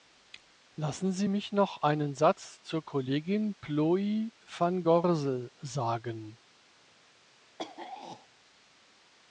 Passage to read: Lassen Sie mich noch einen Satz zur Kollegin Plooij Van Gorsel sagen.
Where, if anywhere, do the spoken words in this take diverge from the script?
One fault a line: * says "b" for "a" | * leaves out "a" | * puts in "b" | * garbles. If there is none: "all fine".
all fine